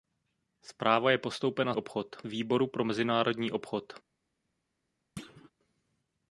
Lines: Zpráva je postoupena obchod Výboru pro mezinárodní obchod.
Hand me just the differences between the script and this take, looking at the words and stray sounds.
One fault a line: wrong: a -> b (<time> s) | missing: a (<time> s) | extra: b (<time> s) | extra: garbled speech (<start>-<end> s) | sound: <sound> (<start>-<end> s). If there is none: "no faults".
sound: thud (5.2-5.5 s)